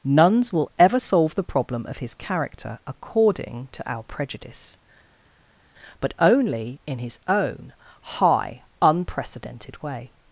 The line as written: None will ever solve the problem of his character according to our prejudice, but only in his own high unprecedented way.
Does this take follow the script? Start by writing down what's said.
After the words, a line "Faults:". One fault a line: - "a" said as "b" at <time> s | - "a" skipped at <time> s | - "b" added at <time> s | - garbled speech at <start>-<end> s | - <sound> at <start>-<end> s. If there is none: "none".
Nuns will ever solve the problem of his character according to our prejudice, but only in his own high unprecedented way.
Faults:
- "None" said as "Nuns" at 0.0 s